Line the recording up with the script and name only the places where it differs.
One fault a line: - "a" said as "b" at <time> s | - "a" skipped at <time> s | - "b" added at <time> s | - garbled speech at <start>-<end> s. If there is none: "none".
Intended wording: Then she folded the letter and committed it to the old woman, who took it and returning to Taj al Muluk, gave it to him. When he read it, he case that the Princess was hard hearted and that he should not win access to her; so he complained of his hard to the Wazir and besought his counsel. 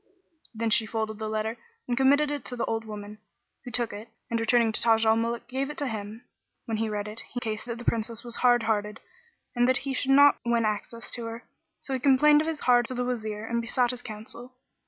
none